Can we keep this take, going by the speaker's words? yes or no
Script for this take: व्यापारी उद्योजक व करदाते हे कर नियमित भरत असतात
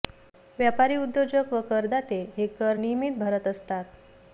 yes